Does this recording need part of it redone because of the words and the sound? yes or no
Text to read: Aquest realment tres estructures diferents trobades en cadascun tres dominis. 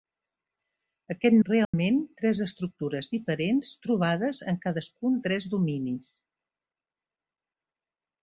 yes